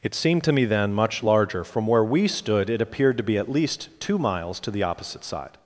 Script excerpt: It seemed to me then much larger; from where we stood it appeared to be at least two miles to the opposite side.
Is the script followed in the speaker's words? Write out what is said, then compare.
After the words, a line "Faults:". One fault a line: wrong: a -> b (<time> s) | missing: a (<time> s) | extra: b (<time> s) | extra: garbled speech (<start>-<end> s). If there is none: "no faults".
It seemed to me then much larger; from where we stood it appeared to be at least two miles to the opposite side.
Faults:
no faults